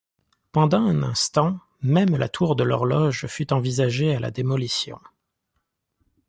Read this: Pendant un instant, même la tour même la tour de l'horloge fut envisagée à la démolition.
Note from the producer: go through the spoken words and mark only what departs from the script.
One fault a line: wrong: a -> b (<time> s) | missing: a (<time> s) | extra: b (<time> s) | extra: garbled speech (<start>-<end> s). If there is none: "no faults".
missing: même la tour (2.5 s)